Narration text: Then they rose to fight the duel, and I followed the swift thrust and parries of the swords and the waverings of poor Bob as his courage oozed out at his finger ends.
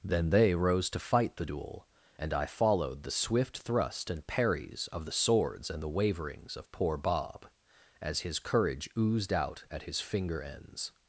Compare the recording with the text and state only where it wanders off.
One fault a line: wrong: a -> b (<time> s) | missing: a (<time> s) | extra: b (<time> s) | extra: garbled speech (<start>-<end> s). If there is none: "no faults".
no faults